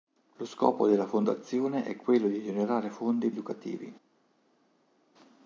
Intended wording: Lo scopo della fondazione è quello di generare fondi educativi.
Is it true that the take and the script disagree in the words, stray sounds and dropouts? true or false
false